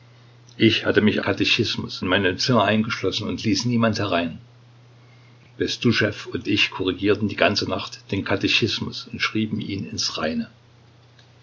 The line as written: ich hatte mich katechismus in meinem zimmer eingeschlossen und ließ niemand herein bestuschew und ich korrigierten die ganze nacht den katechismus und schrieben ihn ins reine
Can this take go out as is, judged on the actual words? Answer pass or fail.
pass